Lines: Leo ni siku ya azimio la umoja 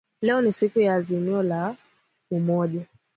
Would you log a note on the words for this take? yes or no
no